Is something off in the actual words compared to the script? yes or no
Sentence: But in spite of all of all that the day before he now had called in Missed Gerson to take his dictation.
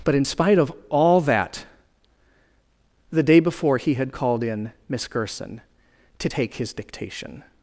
yes